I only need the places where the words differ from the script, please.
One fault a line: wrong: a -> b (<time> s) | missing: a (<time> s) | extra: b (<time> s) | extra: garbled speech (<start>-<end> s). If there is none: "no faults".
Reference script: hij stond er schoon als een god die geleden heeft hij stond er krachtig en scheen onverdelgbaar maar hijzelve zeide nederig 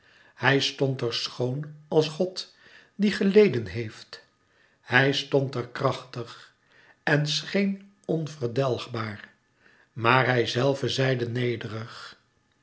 missing: een (2.1 s)